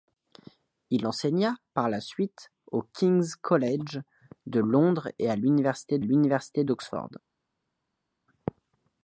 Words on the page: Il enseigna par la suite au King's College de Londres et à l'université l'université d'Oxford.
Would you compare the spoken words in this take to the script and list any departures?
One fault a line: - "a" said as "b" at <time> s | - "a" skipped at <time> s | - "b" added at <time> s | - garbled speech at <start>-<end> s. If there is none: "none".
none